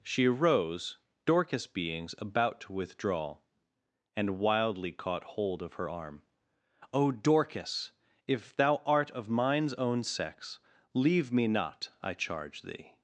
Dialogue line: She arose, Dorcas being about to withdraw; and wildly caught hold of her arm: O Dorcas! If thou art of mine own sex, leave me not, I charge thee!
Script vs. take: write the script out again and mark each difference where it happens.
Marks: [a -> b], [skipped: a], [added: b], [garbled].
She arose, Dorcas [being -> beings] about to withdraw; and wildly caught hold of her arm: O Dorcas! If thou art of [mine -> mines] own sex, leave me not, I charge thee!